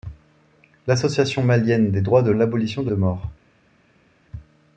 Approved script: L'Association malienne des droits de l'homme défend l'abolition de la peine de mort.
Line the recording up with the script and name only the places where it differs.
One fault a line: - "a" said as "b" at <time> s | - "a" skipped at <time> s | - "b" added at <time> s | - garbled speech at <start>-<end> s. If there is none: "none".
- "l'homme défend" skipped at 2.3 s
- "la peine" skipped at 2.9 s